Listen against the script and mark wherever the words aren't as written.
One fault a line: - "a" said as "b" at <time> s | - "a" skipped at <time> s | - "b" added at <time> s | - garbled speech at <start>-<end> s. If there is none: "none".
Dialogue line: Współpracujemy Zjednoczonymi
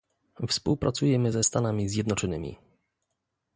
- "ze Stanami" added at 1.3 s